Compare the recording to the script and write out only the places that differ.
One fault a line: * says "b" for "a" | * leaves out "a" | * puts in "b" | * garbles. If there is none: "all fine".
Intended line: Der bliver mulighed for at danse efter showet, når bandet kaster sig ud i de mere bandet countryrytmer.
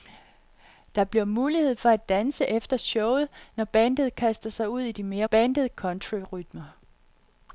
all fine